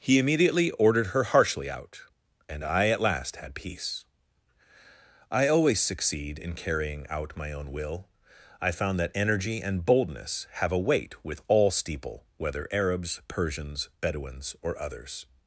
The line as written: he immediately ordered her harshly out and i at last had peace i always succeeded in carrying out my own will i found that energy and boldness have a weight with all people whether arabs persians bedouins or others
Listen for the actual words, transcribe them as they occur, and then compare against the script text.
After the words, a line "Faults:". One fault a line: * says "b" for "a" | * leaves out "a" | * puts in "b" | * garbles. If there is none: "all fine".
he immediately ordered her harshly out and i at last had peace i always succeed in carrying out my own will i found that energy and boldness have a weight with all steeple whether arabs persians bedouins or others
Faults:
* says "succeed" for "succeeded"
* says "steeple" for "people"